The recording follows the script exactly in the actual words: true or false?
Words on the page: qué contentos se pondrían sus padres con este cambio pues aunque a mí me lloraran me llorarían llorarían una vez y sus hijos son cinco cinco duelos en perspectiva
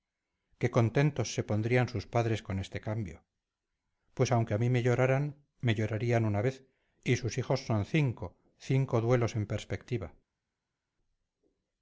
false